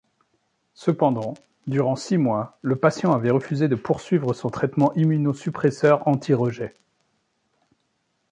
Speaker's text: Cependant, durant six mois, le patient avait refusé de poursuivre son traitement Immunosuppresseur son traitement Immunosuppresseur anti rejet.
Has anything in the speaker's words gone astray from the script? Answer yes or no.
yes